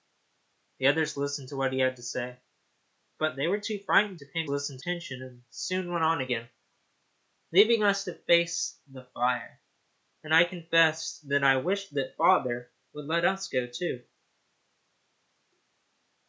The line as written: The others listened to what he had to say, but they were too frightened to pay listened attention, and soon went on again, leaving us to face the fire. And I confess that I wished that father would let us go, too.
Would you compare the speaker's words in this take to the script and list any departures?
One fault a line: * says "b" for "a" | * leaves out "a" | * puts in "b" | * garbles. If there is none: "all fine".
all fine